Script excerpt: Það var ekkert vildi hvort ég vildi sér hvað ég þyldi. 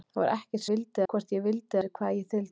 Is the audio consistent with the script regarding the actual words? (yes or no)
yes